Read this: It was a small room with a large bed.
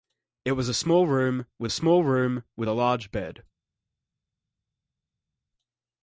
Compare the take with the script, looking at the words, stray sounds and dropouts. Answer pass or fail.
fail